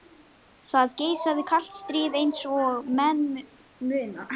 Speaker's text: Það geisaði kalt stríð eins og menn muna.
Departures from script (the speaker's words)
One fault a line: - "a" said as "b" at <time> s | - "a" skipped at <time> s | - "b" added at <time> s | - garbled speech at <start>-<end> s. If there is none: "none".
none